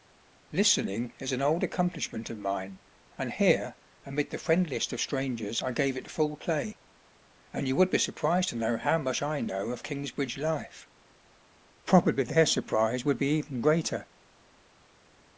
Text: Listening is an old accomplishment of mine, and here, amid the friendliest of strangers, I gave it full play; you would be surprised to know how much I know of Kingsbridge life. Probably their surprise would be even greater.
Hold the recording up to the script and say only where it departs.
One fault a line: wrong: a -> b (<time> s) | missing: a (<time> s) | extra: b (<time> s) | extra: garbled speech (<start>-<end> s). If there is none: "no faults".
extra: and (7.5 s)